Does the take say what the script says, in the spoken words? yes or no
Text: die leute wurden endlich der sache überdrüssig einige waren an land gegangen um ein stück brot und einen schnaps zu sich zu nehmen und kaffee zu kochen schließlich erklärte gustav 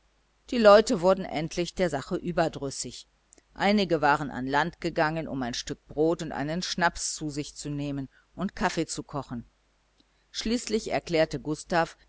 yes